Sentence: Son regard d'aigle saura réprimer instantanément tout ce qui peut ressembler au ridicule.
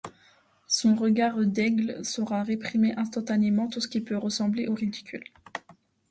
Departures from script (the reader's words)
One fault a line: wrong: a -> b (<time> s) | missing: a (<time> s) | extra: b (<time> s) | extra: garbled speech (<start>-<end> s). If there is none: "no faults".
no faults